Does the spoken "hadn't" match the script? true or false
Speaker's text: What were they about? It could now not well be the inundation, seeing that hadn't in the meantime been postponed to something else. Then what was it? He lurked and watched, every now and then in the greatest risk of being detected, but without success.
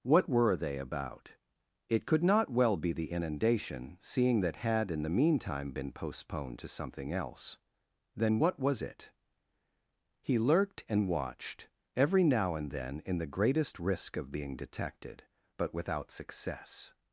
false